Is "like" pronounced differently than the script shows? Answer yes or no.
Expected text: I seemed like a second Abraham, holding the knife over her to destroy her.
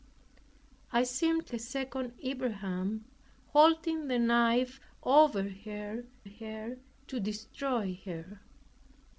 yes